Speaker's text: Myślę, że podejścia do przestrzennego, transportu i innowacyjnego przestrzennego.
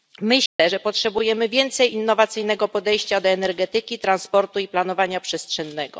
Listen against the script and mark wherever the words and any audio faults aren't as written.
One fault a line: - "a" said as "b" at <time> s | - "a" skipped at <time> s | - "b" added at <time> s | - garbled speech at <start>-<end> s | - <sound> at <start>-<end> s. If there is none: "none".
- dropout at 0.5-0.6 s
- "potrzebujemy więcej innowacyjnego" added at 0.8 s
- "przestrzennego" said as "energetyki" at 3.3 s
- "innowacyjnego" said as "planowania" at 4.7 s